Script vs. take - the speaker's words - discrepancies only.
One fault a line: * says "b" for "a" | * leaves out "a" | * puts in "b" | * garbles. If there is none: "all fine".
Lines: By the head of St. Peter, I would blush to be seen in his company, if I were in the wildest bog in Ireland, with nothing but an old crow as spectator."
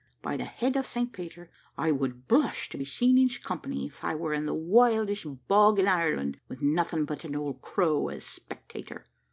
all fine